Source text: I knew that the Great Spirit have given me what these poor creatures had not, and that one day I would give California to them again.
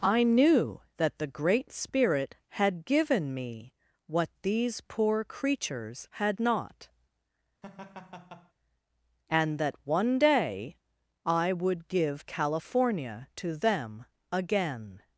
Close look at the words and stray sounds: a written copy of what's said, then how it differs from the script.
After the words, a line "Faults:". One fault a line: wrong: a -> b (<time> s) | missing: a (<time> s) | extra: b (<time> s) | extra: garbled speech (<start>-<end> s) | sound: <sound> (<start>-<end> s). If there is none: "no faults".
I knew that the Great Spirit had given me what these poor creatures had not, and that one day I would give California to them again.
Faults:
wrong: have -> had (2.5 s)
sound: laugh (7.6-8.5 s)